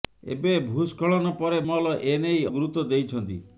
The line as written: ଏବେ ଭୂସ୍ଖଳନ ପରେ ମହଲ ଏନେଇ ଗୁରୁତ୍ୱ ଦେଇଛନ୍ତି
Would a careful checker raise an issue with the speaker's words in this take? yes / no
no